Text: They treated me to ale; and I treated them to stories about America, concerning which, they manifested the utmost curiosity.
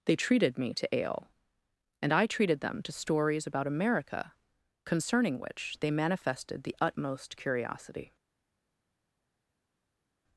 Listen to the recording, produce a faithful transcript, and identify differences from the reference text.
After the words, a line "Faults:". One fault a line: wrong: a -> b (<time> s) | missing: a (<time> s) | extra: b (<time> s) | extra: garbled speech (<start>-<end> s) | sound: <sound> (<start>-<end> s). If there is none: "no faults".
They treated me to ale; and I treated them to stories about America, concerning which, they manifested the utmost curiosity.
Faults:
no faults